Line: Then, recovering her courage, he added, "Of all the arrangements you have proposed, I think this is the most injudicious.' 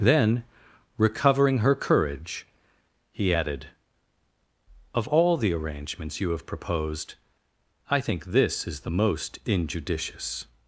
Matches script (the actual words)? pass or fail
pass